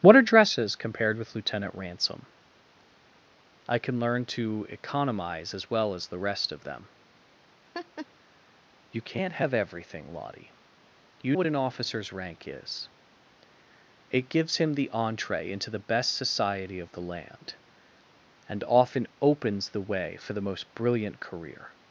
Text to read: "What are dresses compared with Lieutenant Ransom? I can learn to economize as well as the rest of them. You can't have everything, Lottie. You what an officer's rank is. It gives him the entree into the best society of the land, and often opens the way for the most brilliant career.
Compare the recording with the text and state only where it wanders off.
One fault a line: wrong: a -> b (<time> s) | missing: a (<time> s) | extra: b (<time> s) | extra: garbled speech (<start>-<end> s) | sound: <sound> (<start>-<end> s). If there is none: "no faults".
sound: laugh (7.7-8.1 s)